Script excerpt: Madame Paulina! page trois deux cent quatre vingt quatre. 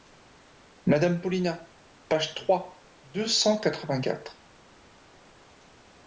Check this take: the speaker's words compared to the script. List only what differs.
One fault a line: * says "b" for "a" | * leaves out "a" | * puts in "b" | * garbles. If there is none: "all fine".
all fine